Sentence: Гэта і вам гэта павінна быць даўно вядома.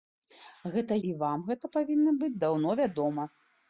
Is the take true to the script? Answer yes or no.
yes